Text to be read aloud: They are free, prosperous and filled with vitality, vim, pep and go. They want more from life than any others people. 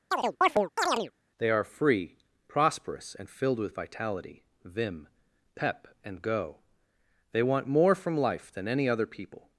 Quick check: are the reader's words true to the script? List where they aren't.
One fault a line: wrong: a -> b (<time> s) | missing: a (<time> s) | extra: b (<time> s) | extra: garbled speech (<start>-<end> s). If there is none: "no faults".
wrong: others -> other (8.9 s)